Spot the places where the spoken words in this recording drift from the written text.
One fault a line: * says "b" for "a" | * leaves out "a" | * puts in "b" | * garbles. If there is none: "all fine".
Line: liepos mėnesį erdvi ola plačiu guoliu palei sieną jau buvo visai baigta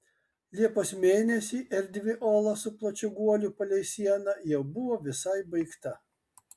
* puts in "su"